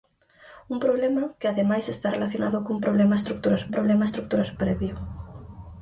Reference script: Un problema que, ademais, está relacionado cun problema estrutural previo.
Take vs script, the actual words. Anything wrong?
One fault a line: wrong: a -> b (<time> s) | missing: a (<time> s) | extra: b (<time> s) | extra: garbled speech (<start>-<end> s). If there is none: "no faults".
extra: problema estrutural (3.8 s)